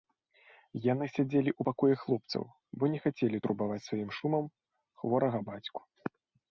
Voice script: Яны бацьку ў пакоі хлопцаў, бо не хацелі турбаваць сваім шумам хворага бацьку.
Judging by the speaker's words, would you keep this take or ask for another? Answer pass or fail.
fail